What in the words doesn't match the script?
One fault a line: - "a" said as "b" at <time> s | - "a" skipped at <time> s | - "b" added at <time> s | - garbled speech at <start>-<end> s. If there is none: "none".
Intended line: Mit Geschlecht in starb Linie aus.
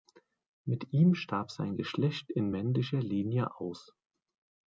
- "ihm starb sein" added at 0.9 s
- "starb" said as "männlicher" at 2.5 s